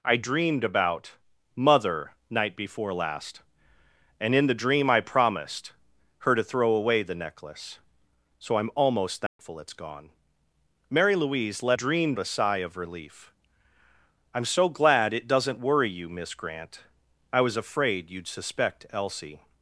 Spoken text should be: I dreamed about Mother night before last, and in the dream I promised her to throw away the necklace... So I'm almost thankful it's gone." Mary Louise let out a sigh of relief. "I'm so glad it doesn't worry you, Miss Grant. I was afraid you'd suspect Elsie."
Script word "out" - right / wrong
wrong